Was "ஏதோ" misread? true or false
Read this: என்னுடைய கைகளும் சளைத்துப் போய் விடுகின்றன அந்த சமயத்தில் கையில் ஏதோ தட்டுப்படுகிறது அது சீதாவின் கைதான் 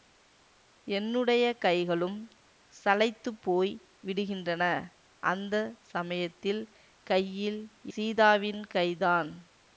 true